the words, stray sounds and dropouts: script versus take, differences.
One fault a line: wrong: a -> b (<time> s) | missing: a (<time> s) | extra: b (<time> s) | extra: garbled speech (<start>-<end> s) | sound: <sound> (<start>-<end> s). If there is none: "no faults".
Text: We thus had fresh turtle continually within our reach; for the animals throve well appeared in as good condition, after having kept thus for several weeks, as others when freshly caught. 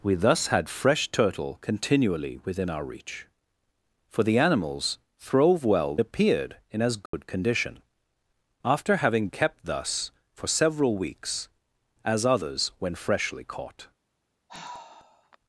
sound: dropout (7.1-7.1 s)
sound: sigh (14.5-15.4 s)